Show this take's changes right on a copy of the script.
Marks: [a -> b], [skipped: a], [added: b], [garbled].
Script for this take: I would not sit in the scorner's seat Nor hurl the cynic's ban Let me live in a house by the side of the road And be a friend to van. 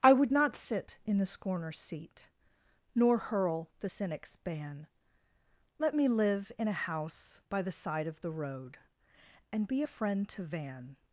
I would not sit in the scorner's seat Nor hurl the cynic's ban Let me live in a house by the side of the road And be a friend to van.